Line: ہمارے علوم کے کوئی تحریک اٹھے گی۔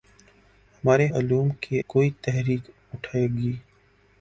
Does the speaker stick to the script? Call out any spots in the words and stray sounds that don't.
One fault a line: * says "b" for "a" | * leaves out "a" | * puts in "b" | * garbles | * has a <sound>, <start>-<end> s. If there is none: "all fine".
all fine